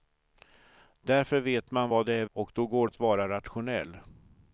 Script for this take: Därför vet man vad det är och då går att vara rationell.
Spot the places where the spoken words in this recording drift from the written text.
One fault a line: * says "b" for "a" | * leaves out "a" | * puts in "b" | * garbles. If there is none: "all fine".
all fine